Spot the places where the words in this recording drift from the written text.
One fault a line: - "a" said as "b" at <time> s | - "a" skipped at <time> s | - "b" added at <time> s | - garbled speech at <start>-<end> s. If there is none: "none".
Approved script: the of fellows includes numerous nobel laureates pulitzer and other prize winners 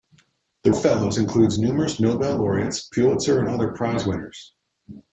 none